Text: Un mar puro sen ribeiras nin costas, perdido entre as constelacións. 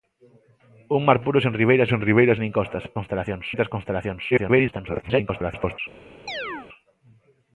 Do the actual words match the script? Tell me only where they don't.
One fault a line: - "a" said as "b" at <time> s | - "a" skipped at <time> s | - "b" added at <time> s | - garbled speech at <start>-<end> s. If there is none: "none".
- "sen ribeiras" added at 1.9 s
- "perdido" said as "constelacións" at 3.0 s
- garbled speech at 4.3-5.8 s